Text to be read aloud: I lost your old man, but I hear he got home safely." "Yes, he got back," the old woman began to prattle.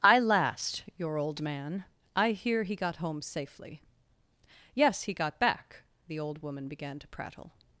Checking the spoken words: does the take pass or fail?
fail